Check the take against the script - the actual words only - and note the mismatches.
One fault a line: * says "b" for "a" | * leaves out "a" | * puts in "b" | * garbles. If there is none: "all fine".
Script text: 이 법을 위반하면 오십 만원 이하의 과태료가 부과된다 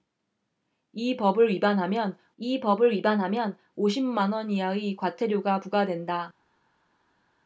* puts in "이 법을 위반하면"